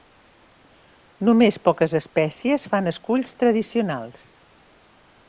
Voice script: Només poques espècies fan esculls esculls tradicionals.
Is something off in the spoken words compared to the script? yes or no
yes